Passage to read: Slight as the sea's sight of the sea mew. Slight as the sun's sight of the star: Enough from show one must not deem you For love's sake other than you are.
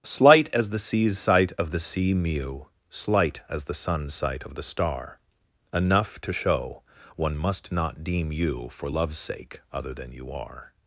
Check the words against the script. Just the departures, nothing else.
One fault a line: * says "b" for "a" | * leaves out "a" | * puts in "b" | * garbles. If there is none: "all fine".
* says "to" for "from"